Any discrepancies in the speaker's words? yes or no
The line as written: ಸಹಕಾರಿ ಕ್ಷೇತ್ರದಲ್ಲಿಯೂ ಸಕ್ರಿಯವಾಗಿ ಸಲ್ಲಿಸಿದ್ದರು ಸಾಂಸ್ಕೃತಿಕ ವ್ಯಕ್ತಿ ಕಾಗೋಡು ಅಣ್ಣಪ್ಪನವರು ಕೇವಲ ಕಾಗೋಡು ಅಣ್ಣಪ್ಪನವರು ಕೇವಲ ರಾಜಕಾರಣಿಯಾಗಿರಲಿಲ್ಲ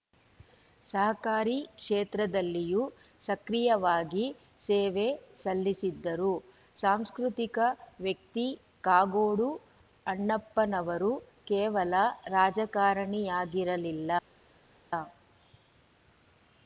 yes